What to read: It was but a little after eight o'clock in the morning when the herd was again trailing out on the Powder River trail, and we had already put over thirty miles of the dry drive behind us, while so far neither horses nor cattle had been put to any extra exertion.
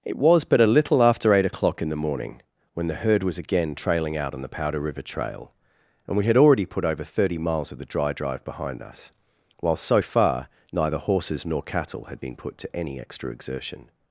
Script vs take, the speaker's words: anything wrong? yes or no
no